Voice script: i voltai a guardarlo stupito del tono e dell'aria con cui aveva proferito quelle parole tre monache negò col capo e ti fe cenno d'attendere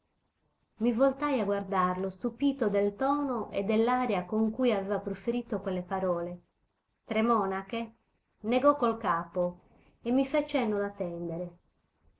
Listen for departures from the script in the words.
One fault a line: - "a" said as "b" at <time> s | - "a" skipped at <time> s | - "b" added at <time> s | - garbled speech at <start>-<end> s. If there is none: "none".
- "ti" said as "mi" at 10.1 s